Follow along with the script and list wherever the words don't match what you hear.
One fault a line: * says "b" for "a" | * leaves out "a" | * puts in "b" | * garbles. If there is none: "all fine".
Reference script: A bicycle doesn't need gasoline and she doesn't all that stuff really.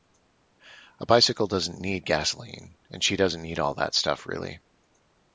* puts in "need"